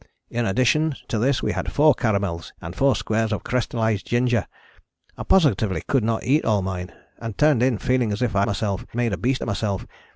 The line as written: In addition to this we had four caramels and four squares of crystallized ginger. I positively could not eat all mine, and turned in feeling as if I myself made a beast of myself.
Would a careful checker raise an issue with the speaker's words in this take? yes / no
no